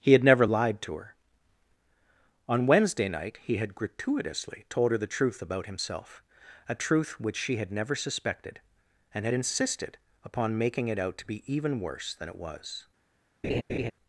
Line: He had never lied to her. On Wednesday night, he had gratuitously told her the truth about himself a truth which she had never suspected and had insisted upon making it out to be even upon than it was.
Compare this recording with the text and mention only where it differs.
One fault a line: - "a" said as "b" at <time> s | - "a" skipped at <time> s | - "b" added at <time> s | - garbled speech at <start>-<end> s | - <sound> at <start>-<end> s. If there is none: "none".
- "upon" said as "worse" at 11.8 s
- laugh at 13.4-13.9 s